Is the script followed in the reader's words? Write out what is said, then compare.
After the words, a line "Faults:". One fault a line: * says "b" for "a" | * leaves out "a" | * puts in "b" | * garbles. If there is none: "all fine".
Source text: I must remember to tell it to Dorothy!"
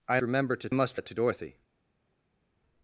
I remember to must it to Dorothy!"
Faults:
* leaves out "must"
* says "must" for "tell"